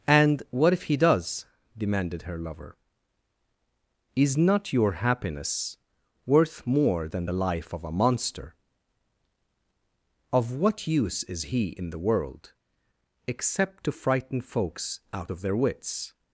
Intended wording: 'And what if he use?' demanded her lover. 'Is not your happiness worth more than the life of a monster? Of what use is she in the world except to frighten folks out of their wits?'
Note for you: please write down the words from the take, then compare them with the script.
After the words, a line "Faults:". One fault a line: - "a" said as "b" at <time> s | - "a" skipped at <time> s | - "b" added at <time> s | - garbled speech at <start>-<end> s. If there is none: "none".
'And what if he does?' demanded her lover. 'Is not your happiness worth more than the life of a monster? Of what use is he in the world except to frighten folks out of their wits?'
Faults:
- "use" said as "does" at 1.0 s
- "she" said as "he" at 11.4 s